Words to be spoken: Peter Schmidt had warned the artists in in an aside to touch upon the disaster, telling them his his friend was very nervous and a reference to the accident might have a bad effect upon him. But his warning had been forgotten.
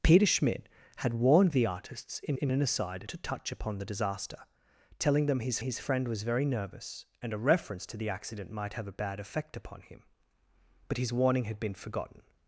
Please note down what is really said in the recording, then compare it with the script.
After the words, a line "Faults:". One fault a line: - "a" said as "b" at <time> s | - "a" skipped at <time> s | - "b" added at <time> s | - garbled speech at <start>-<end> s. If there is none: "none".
Peter Schmidt had warned the artists in in an aside to touch upon the disaster, telling them his his friend was very nervous and a reference to the accident might have a bad effect upon him. But his warning had been forgotten.
Faults:
none